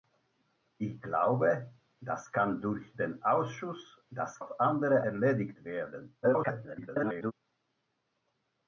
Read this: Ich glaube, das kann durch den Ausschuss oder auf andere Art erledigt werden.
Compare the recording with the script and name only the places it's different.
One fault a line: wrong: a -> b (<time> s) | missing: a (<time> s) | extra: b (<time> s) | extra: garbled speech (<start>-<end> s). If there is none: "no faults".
wrong: oder -> das (4.1 s)
missing: Art (5.0 s)
extra: garbled speech (6.2-7.3 s)